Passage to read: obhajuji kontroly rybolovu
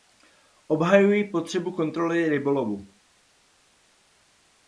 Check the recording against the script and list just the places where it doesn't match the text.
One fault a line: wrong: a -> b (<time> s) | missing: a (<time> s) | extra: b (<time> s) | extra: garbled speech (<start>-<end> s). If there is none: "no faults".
extra: potřebu (1.2 s)